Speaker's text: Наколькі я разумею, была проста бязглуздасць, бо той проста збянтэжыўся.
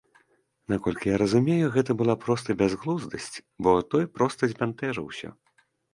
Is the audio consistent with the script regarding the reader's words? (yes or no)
no